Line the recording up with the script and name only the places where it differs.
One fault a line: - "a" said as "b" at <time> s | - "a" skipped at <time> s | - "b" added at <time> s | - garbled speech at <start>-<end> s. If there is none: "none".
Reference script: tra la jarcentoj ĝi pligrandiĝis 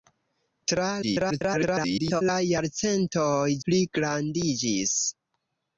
- garbled speech at 1.0-2.2 s
- "ĝi" skipped at 3.5 s